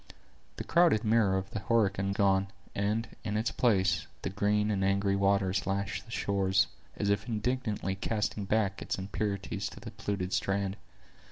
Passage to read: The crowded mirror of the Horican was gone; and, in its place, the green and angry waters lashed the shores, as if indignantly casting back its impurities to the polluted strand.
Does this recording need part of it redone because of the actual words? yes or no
yes